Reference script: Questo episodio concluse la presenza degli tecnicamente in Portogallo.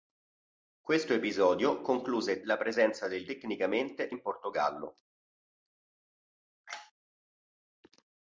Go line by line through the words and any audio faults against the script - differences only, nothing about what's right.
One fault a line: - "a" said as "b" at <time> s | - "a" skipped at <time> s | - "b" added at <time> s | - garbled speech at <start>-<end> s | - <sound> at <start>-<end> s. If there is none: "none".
none